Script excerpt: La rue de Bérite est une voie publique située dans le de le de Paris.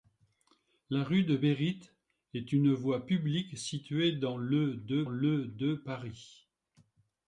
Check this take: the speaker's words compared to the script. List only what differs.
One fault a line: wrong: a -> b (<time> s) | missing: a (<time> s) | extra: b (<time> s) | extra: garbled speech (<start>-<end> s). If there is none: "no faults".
no faults